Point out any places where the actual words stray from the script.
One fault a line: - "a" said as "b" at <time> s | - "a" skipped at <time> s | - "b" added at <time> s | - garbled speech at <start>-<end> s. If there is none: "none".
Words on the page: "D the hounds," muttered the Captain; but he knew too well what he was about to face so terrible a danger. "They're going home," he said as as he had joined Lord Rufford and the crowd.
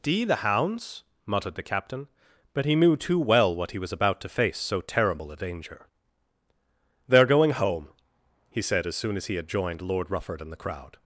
- "soon" added at 9.0 s